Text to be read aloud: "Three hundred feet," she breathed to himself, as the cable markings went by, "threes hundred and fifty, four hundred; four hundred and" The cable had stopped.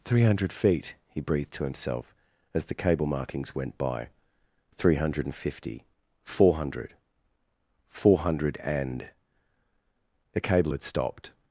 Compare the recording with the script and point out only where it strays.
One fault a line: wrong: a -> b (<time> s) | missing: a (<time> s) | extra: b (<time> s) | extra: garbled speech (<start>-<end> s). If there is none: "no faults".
wrong: she -> he (1.1 s)
wrong: threes -> three (4.8 s)